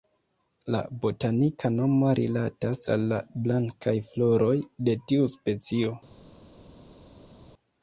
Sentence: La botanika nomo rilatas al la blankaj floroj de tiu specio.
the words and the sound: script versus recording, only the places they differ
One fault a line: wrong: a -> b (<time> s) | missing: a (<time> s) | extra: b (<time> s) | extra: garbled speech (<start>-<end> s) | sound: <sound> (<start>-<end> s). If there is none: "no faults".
no faults